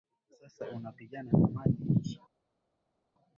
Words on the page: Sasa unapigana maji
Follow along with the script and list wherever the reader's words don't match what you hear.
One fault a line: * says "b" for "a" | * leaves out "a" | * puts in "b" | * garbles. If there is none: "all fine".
* puts in "na"